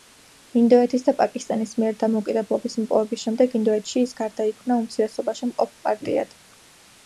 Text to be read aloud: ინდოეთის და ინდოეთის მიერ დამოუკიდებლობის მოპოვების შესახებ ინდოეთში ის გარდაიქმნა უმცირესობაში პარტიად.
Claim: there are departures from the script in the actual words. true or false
true